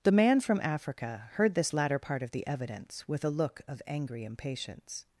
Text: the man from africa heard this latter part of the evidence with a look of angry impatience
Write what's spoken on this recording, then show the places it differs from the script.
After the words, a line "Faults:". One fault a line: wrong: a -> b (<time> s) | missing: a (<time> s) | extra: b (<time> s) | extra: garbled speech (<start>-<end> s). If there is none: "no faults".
the man from africa heard this latter part of the evidence with a look of angry impatience
Faults:
no faults